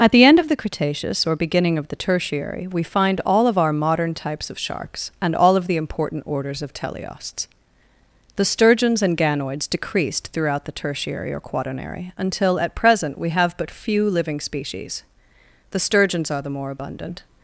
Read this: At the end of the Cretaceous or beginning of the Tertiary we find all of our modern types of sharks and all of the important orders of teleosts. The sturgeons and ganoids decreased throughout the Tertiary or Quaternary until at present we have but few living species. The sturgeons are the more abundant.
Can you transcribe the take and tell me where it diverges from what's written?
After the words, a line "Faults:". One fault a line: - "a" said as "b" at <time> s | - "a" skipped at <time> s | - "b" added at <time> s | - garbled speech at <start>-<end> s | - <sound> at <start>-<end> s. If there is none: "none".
At the end of the Cretaceous or beginning of the Tertiary we find all of our modern types of sharks and all of the important orders of teleosts. The sturgeons and ganoids decreased throughout the Tertiary or Quaternary until at present we have but few living species. The sturgeons are the more abundant.
Faults:
none